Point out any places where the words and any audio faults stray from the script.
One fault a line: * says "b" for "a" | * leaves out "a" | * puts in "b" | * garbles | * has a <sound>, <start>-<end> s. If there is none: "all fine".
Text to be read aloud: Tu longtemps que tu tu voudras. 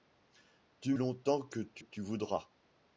all fine